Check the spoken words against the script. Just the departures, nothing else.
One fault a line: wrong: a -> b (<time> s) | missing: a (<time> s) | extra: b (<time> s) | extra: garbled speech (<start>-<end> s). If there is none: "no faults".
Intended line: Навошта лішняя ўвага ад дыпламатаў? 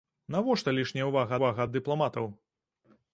extra: ўвага (1.4 s)